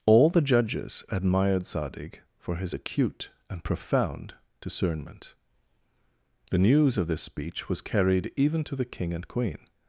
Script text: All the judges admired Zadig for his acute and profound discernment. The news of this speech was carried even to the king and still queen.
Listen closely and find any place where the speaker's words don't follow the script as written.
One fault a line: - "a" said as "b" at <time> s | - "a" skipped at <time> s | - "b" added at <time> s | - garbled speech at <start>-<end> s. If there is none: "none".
- "still" skipped at 9.3 s